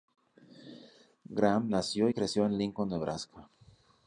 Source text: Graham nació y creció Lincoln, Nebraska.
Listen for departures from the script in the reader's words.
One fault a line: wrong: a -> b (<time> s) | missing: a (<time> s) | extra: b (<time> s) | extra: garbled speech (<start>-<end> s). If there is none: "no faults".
extra: en (2.4 s)